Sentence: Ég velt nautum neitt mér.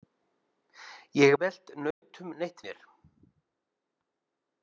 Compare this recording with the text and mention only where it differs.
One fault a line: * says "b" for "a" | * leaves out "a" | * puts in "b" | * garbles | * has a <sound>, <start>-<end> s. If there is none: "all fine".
* has a dropout, 1.9-2.0 s